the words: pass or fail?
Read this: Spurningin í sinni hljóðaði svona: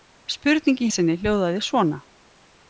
pass